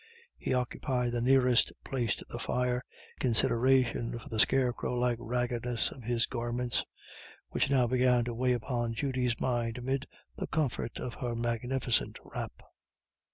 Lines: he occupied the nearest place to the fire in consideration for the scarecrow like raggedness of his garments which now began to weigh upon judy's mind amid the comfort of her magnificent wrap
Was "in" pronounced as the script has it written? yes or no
no